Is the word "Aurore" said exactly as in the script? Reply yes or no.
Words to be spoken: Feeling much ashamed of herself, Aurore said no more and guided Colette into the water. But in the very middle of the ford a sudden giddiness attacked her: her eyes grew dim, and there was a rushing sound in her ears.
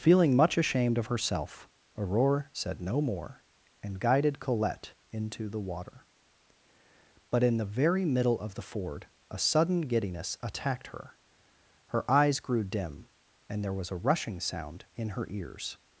yes